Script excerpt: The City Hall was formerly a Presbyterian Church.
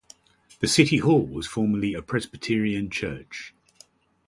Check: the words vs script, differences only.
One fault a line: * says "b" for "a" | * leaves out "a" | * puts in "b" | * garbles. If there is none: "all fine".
all fine